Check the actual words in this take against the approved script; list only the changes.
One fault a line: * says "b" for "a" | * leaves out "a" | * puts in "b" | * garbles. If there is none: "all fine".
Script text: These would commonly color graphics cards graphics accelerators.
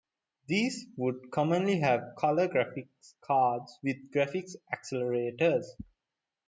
* puts in "have"
* puts in "with"